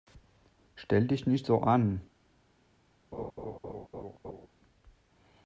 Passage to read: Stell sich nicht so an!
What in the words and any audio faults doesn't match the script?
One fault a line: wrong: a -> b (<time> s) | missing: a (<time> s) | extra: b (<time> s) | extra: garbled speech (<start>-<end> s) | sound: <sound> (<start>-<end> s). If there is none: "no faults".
wrong: sich -> dich (1.1 s)
sound: laugh (3.1-4.5 s)